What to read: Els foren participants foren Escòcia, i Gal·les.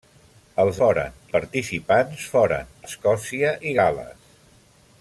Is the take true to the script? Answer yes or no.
yes